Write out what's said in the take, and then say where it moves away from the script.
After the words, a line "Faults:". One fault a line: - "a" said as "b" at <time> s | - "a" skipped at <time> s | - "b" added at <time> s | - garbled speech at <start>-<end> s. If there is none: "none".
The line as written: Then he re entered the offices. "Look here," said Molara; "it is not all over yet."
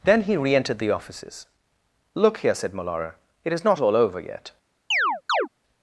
Then he re entered the offices. "Look here," said Molara; "it is not all over yet."
Faults:
none